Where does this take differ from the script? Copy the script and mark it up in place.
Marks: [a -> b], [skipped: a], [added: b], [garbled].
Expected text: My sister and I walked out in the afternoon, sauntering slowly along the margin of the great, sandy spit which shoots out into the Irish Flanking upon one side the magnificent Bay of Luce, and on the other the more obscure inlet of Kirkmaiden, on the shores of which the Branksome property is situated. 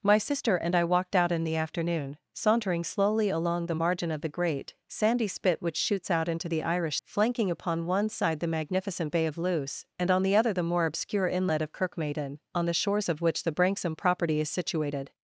My sister and I walked out in the afternoon, sauntering slowly along the margin of the great, sandy spit which shoots out into the Irish Flanking upon one side the magnificent Bay of Luce, and on the other the more obscure inlet of Kirkmaiden, on the shores of which the Branksome property is situated.